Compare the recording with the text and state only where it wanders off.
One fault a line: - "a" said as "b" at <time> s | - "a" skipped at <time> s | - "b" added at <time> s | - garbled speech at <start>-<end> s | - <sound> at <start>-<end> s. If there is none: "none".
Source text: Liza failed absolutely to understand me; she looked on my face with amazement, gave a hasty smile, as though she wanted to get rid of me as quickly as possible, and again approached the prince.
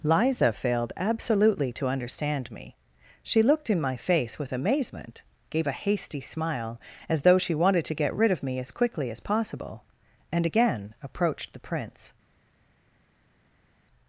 - "on" said as "in" at 3.7 s